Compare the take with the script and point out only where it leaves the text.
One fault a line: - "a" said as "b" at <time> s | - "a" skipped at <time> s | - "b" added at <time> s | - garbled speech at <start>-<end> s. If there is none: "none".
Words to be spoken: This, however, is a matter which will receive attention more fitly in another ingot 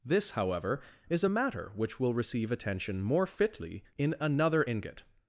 none